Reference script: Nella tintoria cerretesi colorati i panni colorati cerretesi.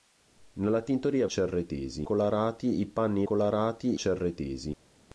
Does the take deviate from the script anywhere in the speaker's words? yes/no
no